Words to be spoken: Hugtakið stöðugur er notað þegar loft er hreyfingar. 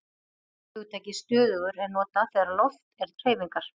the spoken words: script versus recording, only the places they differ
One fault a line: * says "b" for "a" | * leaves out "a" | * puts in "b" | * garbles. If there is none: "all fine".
all fine